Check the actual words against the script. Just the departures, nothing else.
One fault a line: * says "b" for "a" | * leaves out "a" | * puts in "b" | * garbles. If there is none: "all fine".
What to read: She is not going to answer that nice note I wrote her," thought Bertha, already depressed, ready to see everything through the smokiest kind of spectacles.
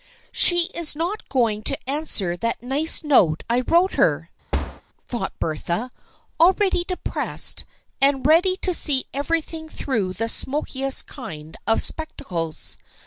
* puts in "and"